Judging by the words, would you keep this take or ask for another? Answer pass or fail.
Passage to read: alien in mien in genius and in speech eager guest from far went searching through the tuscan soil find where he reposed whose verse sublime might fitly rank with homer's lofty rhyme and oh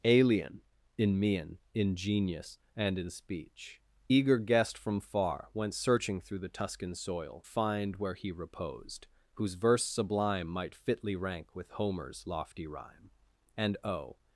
pass